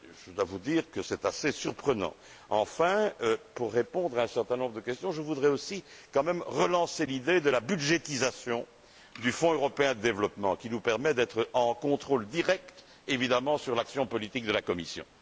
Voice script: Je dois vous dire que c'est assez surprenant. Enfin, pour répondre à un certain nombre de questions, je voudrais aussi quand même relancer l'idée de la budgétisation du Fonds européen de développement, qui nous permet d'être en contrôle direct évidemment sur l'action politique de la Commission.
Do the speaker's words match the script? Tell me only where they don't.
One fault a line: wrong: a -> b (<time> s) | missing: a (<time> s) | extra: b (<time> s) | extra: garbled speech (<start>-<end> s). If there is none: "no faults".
no faults